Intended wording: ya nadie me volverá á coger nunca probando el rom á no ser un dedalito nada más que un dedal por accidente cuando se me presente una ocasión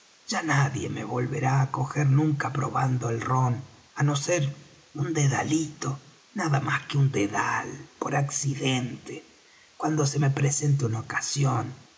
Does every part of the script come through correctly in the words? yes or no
yes